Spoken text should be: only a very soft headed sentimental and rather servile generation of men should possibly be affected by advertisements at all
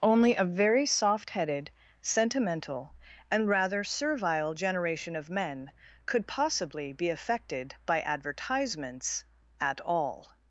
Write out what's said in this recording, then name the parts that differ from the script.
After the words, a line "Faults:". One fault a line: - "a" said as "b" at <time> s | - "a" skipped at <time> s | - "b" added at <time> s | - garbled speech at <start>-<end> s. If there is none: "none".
only a very soft headed sentimental and rather servile generation of men could possibly be affected by advertisements at all
Faults:
- "should" said as "could" at 6.1 s